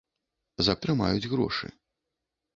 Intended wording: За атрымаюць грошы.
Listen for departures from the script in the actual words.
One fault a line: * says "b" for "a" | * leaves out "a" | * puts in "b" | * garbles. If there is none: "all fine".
all fine